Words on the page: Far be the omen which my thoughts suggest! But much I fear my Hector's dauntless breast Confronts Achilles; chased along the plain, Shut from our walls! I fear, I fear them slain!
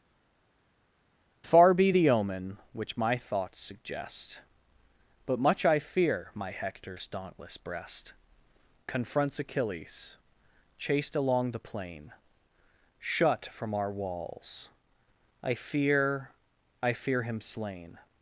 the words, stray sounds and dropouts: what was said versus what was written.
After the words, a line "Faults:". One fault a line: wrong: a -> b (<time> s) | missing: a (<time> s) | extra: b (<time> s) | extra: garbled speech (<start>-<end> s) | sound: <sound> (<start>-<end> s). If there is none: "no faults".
Far be the omen which my thoughts suggest! But much I fear my Hector's dauntless breast Confronts Achilles; chased along the plain, Shut from our walls! I fear, I fear him slain!
Faults:
wrong: them -> him (17.2 s)